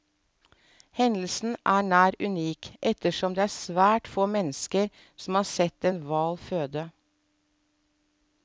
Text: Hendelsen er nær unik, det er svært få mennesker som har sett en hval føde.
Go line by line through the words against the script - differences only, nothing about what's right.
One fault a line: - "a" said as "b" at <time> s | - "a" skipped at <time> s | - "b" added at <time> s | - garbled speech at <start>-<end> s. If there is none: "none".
- "ettersom" added at 2.9 s